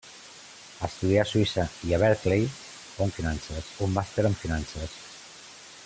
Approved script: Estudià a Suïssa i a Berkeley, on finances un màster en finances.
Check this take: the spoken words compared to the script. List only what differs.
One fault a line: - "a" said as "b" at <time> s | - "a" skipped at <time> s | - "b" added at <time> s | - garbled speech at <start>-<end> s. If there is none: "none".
none